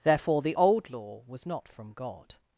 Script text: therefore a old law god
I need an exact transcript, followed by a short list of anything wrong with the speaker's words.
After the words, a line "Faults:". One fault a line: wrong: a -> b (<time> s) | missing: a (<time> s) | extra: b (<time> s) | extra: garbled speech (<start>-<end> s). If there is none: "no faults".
therefore the old law was not from god
Faults:
wrong: a -> the (0.4 s)
extra: was not from (1.3 s)